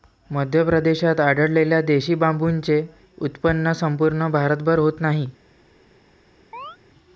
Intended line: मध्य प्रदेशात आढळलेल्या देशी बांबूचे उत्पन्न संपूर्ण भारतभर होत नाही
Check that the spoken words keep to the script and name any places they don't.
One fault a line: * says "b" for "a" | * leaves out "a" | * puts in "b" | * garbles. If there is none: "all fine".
all fine